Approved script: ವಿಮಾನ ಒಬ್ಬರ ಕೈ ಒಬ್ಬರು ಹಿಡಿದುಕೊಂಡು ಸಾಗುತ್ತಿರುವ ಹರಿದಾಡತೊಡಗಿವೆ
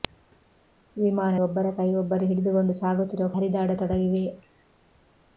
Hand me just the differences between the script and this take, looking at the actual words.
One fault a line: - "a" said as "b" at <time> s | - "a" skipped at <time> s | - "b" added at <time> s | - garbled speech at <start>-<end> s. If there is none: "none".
none